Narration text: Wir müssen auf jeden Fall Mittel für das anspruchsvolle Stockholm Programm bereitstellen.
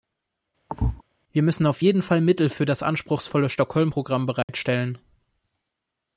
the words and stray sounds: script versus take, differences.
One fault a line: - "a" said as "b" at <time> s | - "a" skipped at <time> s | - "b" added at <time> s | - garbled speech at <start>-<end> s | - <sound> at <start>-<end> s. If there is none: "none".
- thud at 0.7-1.0 s
- dropout at 4.4-4.5 s